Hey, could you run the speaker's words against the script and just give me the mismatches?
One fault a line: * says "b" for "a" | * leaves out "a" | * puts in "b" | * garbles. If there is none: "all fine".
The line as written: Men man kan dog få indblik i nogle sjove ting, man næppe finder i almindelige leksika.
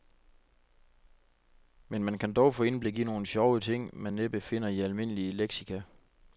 all fine